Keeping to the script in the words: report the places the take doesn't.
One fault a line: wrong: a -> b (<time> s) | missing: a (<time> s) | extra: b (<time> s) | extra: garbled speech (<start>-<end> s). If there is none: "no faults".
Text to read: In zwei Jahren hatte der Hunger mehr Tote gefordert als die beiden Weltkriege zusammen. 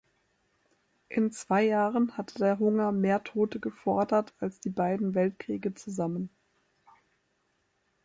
no faults